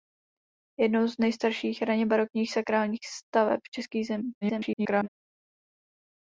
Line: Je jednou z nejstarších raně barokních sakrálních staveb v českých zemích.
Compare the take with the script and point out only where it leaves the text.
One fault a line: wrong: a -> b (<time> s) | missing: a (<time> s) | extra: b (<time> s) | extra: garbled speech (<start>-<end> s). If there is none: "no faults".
extra: garbled speech (4.4-5.1 s)